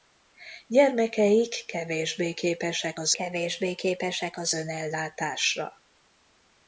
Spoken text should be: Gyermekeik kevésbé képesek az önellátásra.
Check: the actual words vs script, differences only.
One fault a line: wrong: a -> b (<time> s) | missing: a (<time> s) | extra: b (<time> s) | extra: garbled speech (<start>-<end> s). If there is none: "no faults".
extra: kevésbé képesek az (3.1 s)